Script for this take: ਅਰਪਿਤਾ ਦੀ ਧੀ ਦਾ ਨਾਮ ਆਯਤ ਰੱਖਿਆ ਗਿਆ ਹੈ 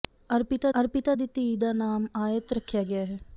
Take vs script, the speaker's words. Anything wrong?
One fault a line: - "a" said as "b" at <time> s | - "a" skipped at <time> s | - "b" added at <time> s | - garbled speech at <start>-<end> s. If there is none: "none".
- "ਅਰਪਿਤਾ" added at 0.8 s